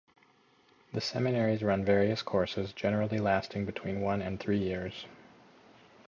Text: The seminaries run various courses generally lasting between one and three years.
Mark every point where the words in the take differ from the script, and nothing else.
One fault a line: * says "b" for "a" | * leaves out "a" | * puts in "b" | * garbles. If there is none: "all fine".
all fine